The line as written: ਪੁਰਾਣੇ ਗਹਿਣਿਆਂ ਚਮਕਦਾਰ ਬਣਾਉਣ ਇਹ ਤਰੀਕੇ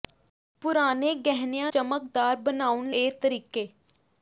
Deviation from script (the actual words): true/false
false